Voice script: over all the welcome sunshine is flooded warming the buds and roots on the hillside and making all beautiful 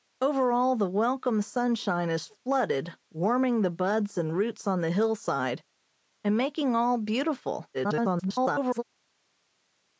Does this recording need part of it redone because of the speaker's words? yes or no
yes